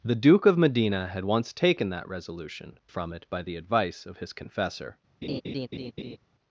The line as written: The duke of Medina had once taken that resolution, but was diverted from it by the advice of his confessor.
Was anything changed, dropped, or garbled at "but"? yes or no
yes